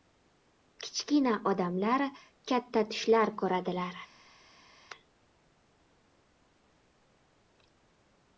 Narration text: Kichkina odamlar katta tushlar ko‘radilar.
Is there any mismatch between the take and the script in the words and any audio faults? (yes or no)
no